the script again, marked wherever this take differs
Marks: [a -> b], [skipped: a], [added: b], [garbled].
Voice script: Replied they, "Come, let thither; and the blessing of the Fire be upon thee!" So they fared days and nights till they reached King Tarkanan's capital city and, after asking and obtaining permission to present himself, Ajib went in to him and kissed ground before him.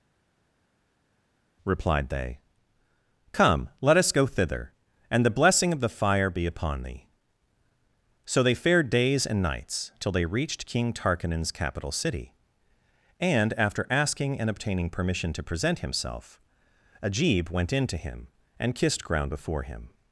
Replied they, "Come, let [added: us go] thither; and the blessing of the Fire be upon thee!" So they fared days and nights till they reached King Tarkanan's capital city and, after asking and obtaining permission to present himself, Ajib went in to him and kissed ground before him.